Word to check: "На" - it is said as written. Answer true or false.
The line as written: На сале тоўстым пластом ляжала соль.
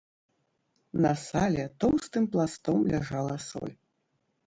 true